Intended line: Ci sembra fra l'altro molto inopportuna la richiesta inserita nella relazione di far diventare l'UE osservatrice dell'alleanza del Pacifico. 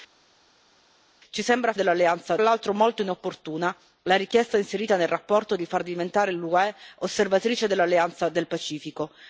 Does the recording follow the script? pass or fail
fail